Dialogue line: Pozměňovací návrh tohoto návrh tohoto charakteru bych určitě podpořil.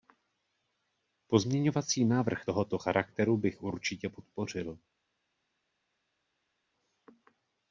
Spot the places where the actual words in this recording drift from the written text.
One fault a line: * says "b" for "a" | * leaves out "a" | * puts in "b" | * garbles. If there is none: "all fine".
* leaves out "návrh tohoto"